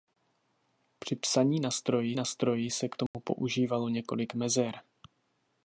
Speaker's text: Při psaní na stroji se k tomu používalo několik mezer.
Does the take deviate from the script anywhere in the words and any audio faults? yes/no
yes